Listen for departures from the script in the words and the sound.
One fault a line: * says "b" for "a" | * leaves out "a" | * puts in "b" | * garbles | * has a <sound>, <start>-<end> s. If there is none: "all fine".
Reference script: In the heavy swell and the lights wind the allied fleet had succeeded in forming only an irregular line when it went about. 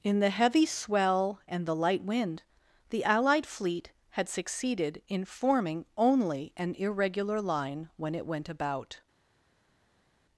* says "light" for "lights"